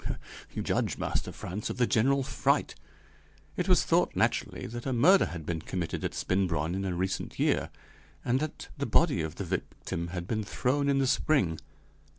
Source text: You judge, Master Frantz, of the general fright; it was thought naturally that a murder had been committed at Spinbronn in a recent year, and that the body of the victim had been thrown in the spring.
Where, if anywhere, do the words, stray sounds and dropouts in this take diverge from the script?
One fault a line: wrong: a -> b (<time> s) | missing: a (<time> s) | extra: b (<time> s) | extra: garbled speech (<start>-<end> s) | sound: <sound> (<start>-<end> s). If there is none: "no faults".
no faults